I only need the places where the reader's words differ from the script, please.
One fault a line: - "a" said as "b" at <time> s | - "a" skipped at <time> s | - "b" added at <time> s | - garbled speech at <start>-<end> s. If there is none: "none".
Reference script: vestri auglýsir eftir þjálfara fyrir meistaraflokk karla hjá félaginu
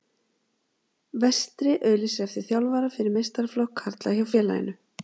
none